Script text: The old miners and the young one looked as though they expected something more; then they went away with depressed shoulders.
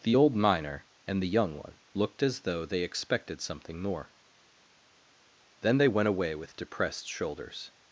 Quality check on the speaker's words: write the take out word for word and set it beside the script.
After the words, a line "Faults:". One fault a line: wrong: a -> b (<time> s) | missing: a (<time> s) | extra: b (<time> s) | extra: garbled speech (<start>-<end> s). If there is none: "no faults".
The old miner and the young one looked as though they expected something more; then they went away with depressed shoulders.
Faults:
wrong: miners -> miner (0.3 s)